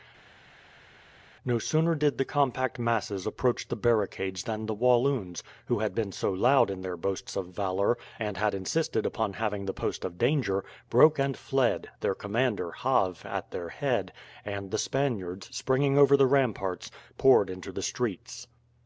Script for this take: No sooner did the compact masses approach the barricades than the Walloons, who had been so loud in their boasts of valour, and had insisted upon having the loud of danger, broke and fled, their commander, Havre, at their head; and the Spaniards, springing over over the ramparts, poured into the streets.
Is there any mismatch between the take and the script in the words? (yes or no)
yes